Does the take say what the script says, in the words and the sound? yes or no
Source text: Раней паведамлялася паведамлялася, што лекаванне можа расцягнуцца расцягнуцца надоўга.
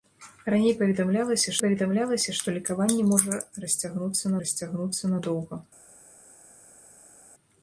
yes